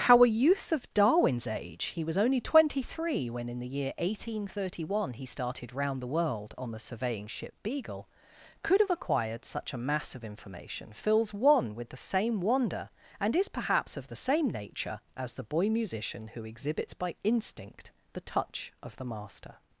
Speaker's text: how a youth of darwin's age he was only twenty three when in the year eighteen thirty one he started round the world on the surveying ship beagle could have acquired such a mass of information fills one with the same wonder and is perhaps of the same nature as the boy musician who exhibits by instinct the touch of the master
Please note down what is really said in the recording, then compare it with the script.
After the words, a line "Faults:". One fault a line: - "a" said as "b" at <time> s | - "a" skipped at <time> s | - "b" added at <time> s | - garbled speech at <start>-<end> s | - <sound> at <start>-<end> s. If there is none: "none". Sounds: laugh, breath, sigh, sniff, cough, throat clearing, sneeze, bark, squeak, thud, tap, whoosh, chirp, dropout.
how a youth of darwin's age he was only twenty three when in the year eighteen thirty one he started round the world on the surveying ship beagle could have acquired such a mass of information fills one with the same wonder and is perhaps of the same nature as the boy musician who exhibits by instinct the touch of the master
Faults:
none